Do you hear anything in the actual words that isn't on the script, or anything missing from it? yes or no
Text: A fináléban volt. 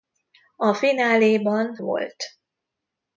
no